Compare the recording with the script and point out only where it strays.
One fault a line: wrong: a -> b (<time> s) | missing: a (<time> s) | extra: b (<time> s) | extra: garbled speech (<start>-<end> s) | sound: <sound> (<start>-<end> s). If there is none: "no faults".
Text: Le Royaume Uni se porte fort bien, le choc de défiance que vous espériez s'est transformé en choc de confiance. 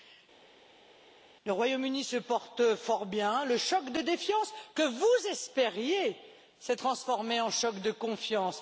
no faults